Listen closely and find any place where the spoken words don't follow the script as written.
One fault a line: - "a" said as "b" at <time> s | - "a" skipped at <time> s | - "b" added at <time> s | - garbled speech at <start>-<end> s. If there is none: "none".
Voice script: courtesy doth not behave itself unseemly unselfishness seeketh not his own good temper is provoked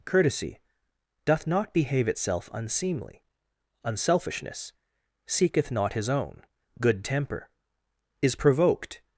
none